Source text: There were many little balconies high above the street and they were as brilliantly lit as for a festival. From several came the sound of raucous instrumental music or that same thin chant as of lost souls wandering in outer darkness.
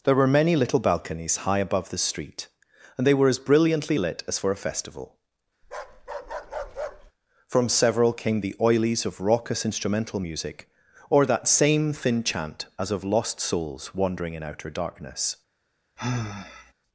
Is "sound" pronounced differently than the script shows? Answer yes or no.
yes